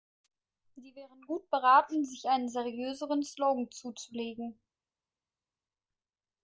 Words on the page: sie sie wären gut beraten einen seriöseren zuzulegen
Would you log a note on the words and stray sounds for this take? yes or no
yes